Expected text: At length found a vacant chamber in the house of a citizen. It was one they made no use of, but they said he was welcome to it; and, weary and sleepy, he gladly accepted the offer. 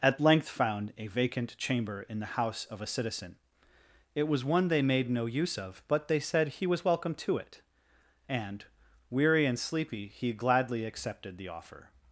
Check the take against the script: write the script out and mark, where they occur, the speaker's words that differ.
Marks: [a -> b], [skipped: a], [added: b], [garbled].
At length found a vacant chamber in the house of a citizen. It was one they made no use of, but they said he was welcome to it; and, weary and sleepy, he gladly accepted the offer.